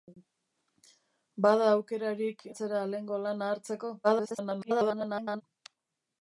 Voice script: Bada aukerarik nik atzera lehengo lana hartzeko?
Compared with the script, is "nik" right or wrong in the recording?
wrong